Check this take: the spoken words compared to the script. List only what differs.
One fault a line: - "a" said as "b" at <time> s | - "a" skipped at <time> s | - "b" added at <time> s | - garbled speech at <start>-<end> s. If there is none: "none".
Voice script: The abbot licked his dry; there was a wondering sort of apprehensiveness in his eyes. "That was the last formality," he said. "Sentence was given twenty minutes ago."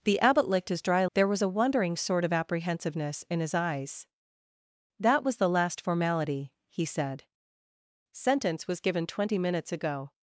none